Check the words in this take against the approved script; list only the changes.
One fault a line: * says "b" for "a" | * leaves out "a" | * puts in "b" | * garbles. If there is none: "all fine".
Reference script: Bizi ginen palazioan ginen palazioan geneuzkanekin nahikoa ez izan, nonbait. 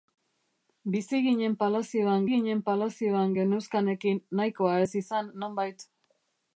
all fine